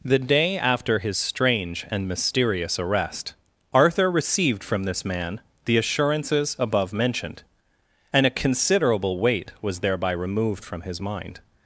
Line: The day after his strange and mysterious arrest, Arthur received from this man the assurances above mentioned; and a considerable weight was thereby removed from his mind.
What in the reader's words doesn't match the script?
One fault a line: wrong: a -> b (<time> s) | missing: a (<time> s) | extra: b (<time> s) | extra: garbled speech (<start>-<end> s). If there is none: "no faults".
no faults